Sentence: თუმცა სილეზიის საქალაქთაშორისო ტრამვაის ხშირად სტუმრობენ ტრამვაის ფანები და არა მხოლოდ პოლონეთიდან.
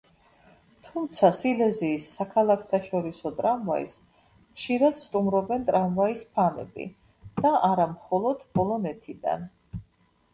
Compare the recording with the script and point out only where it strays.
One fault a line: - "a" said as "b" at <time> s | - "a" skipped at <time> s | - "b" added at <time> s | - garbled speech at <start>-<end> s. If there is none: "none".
none